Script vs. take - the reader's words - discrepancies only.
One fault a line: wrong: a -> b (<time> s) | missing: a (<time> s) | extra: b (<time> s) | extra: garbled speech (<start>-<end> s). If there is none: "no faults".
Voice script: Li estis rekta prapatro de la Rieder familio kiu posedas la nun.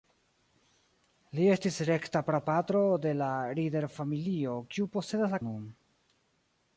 no faults